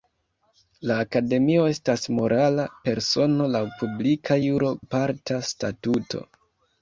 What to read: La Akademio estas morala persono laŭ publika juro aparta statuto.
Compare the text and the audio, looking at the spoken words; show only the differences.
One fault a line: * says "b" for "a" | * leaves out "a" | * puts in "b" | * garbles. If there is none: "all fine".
all fine